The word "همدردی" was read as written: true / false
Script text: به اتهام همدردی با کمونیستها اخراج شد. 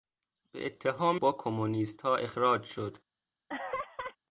false